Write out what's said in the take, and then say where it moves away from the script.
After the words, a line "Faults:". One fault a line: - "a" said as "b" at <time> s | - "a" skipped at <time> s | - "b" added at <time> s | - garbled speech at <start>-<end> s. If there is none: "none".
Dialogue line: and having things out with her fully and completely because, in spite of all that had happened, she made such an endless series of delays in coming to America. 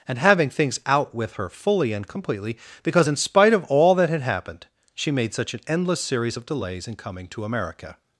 and having things out with her fully and completely because, in spite of all that had happened, she made such an endless series of delays in coming to America.
Faults:
none